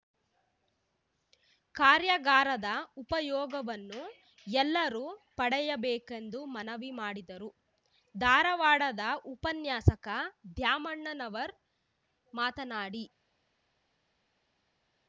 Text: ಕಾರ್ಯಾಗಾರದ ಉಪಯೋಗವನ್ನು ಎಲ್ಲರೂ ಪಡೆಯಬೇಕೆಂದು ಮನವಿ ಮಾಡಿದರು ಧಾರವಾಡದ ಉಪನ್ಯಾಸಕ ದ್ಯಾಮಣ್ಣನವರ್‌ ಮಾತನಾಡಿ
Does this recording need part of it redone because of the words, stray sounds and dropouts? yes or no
no